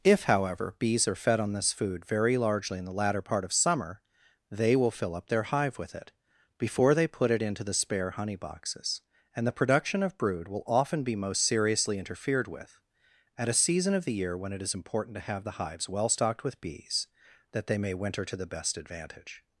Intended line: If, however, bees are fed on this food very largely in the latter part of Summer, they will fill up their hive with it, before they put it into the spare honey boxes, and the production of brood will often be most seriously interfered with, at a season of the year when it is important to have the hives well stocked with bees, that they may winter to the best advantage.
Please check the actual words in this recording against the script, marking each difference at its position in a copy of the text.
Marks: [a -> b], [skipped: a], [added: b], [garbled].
If, however, bees are fed on this food very largely in the latter part of Summer, they will fill up their hive with it, before they put it into the spare honey boxes, and the production of brood will often be most seriously interfered with, at a season of the year when it is important to have the hives well stocked with bees, that they may winter to the best advantage.